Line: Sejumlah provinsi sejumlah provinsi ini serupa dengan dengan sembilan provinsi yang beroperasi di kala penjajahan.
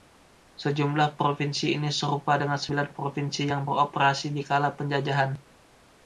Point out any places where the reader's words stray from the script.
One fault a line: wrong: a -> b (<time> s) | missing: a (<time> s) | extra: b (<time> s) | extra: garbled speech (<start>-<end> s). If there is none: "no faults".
missing: sejumlah provinsi (1.8 s)
missing: dengan (2.6 s)